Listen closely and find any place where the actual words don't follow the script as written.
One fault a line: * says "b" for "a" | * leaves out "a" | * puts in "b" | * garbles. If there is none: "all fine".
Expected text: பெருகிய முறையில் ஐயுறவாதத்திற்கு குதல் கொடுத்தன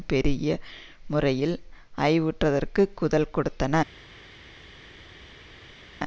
all fine